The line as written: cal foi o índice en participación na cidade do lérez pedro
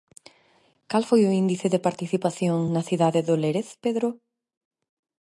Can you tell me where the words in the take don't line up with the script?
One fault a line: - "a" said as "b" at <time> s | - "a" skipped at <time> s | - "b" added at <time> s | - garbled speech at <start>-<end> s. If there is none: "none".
- "en" said as "de" at 1.7 s